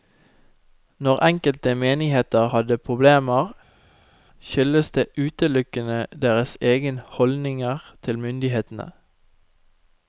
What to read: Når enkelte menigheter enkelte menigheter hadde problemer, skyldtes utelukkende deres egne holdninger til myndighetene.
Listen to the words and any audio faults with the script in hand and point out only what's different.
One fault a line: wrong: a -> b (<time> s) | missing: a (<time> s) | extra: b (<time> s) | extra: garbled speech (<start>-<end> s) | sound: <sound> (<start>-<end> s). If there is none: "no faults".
missing: enkelte menigheter (2.5 s)
extra: det (4.9 s)